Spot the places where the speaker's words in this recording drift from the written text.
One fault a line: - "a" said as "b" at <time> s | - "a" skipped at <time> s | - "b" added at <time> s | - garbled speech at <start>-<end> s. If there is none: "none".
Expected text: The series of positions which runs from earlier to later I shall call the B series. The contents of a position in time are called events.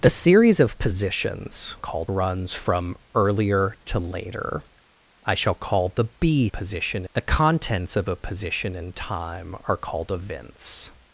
- "which" said as "called" at 1.8 s
- "series" said as "position" at 6.5 s